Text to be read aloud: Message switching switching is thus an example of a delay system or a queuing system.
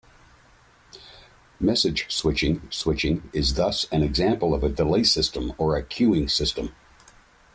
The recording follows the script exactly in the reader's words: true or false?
true